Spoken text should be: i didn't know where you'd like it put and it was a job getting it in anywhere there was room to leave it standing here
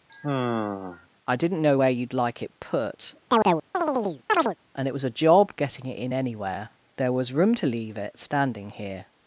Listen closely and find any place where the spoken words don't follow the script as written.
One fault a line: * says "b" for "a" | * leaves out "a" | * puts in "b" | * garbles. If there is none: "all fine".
all fine